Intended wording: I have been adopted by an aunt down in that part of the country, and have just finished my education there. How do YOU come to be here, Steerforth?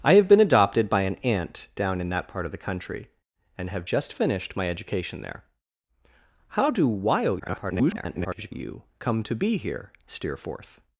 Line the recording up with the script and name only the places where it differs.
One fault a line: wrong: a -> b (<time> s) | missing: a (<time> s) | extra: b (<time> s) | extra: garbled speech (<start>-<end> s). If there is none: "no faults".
extra: garbled speech (7.4-8.5 s)